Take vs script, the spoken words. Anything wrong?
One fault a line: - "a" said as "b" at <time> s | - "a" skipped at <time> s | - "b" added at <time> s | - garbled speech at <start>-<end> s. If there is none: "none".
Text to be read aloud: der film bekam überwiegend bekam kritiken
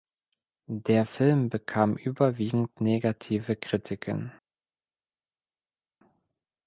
- "bekam" said as "negative" at 2.8 s